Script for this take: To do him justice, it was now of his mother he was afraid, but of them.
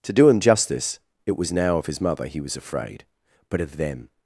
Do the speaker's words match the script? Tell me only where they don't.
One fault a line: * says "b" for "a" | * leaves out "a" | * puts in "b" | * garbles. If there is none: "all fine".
all fine